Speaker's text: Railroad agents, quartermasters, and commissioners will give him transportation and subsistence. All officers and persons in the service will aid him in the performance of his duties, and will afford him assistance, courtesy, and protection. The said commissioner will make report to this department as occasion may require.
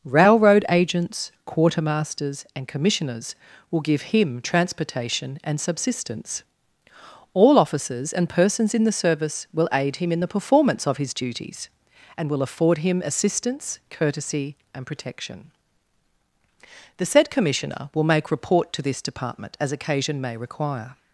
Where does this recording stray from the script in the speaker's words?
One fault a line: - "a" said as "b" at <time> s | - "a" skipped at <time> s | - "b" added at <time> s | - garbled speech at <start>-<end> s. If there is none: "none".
none